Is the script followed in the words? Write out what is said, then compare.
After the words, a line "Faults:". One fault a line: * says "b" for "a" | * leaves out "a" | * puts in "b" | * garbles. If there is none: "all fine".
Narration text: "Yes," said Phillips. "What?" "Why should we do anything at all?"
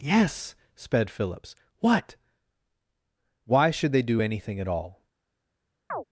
"Yes," sped Phillips. "What?" "Why should they do anything at all?"
Faults:
* says "sped" for "said"
* says "they" for "we"